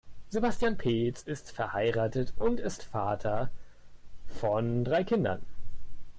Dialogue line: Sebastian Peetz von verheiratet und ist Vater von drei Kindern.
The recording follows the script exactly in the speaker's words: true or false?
false